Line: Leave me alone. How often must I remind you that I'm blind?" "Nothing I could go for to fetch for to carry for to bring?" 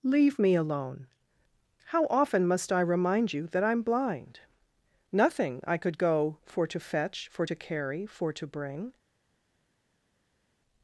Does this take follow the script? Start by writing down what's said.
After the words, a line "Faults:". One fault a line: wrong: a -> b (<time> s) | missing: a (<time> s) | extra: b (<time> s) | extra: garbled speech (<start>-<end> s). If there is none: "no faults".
Leave me alone. How often must I remind you that I'm blind?" "Nothing I could go for to fetch for to carry for to bring?"
Faults:
no faults